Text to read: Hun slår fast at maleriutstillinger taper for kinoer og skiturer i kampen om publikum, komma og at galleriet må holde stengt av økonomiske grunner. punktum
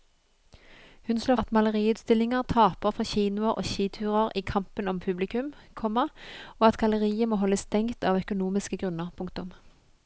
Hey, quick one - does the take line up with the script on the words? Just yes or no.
no